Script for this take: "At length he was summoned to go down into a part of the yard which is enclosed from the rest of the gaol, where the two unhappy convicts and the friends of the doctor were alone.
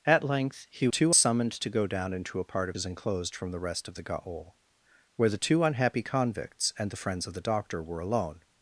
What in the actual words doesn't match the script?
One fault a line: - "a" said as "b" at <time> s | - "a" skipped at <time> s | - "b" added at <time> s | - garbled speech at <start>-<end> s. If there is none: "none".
- "was" said as "two" at 0.9 s
- "the yard which" skipped at 2.8 s